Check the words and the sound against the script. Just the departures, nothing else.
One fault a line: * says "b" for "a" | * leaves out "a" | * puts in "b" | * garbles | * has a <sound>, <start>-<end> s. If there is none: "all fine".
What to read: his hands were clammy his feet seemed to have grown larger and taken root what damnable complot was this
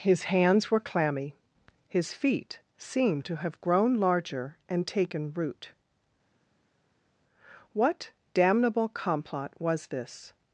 all fine